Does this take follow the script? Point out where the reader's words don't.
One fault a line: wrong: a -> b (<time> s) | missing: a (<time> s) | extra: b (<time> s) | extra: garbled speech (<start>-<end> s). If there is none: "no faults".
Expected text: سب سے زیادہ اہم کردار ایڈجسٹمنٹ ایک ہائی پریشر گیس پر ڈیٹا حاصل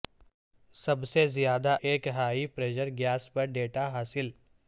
missing: اہم کردار ایڈجسٹمنٹ (1.8 s)